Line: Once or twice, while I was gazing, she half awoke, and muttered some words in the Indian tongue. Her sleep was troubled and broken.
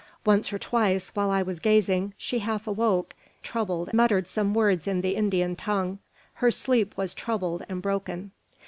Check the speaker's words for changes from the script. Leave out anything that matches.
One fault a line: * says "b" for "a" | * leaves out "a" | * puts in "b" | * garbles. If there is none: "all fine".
* says "troubled" for "and"